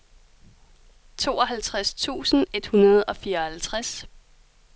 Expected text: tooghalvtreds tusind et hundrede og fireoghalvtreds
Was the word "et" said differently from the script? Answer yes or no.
no